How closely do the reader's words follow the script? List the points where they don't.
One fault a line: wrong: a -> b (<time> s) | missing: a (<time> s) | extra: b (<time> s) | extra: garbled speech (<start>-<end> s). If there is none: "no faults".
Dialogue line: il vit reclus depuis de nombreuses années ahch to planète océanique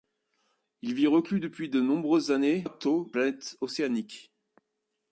no faults